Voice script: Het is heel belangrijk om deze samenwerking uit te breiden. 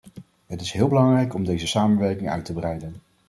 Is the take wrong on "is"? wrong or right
right